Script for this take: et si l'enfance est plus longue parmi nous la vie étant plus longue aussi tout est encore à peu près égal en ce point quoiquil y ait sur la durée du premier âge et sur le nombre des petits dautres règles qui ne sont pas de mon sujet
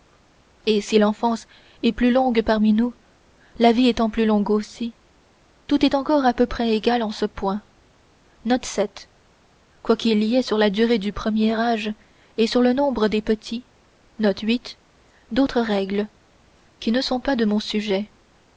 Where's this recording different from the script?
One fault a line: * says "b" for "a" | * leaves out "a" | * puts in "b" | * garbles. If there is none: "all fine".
all fine